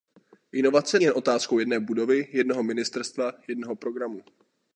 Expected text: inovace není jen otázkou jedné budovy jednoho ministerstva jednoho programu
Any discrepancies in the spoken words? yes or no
yes